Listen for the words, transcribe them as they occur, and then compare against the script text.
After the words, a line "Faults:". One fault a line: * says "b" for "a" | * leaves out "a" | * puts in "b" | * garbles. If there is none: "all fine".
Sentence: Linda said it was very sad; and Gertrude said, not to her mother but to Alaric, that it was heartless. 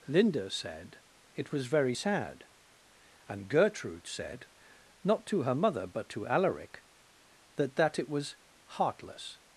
Linda said it was very sad; and Gertrude said, not to her mother but to Alaric, that that it was heartless.
Faults:
* puts in "that"